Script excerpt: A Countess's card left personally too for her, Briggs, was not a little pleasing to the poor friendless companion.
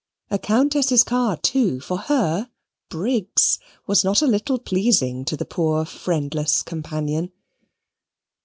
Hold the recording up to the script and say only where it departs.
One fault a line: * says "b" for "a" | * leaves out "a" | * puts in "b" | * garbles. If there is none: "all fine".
* leaves out "left personally"